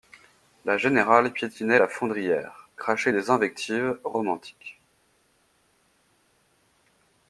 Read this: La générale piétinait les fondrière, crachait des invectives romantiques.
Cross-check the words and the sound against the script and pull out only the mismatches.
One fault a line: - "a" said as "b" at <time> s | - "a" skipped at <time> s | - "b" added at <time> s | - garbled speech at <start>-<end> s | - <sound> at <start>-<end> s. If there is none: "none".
- "les" said as "la" at 1.8 s